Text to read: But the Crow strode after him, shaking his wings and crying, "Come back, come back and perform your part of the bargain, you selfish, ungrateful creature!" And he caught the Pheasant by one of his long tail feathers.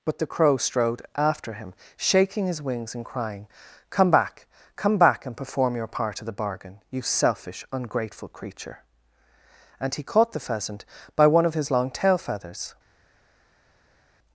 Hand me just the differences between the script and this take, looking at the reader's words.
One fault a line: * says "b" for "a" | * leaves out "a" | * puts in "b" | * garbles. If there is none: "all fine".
all fine